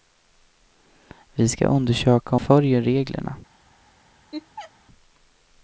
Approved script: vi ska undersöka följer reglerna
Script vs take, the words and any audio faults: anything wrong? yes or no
yes